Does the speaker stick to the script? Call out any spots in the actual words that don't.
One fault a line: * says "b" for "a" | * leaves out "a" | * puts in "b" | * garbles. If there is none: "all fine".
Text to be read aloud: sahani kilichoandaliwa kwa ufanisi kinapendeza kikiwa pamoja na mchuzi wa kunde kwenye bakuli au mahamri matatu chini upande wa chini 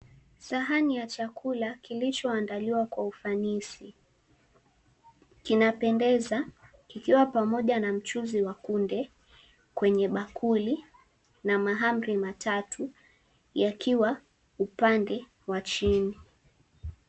* puts in "ya chakula"
* says "na" for "au"
* says "yakiwa" for "chini"